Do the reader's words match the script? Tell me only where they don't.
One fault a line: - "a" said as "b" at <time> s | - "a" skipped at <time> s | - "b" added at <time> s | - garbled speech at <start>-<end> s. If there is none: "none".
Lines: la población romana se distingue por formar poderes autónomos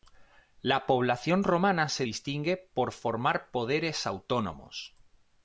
none